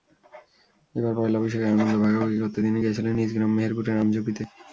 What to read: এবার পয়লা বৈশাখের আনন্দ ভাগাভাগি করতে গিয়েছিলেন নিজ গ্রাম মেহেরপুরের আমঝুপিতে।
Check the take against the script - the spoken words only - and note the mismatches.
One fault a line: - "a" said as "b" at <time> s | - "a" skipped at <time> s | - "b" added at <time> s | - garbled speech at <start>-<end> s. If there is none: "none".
- "তিনি" added at 2.6 s